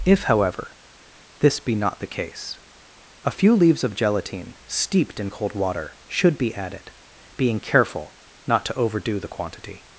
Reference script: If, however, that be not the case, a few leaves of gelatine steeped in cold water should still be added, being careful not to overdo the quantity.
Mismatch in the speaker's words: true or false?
true